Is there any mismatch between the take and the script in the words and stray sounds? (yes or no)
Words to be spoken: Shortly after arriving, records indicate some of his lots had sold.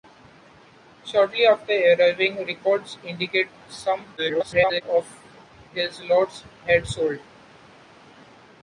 yes